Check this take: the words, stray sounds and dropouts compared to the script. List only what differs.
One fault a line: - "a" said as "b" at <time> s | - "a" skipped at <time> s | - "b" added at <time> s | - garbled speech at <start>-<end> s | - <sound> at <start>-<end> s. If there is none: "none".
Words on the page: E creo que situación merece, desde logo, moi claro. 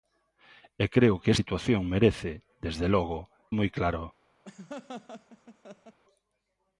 - laugh at 4.4-6.0 s